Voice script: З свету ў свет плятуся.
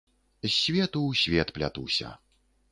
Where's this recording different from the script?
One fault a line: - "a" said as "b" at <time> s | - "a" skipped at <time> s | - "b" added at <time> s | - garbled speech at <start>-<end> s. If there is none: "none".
none